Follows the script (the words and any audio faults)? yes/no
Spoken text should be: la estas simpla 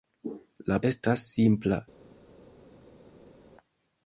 yes